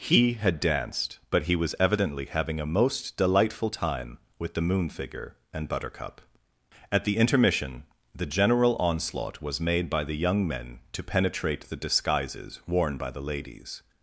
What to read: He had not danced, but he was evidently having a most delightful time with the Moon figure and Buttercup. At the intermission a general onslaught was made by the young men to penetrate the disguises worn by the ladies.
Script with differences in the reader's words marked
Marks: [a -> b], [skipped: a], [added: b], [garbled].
He had [skipped: not] danced, but he was evidently having a most delightful time with the Moon figure and Buttercup. At the intermission [a -> the] general onslaught was made by the young men to penetrate the disguises worn by the ladies.